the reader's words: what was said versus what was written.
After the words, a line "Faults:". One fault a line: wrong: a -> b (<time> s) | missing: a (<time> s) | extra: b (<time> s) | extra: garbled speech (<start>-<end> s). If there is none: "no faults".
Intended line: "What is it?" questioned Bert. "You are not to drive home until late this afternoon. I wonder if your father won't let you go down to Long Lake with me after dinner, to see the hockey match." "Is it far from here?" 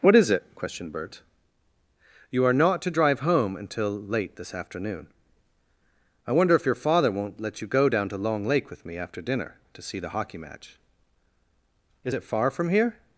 "What is it?" questioned Bert. "You are not to drive home until late this afternoon. I wonder if your father won't let you go down to Long Lake with me after dinner, to see the hockey match." "Is it far from here?"
Faults:
no faults